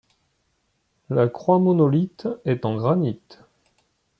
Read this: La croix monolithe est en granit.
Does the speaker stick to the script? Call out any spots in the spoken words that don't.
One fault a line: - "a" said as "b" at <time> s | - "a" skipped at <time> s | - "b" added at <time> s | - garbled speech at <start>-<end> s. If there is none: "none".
none